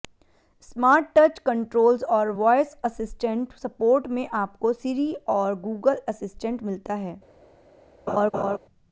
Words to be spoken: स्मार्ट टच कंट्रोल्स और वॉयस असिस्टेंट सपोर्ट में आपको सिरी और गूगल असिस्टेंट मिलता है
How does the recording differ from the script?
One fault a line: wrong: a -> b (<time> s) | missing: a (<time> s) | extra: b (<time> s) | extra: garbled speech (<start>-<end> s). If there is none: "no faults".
no faults